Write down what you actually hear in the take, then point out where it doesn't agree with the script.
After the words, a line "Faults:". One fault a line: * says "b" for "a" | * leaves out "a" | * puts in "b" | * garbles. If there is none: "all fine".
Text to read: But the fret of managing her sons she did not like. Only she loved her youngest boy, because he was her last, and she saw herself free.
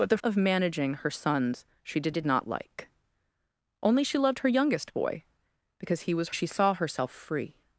But the of managing her sons she did did not like. Only she loved her youngest boy, because he was she saw herself free.
Faults:
* leaves out "fret"
* puts in "did"
* leaves out "her last and"